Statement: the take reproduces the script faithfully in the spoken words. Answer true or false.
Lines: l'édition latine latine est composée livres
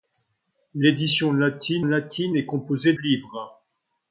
true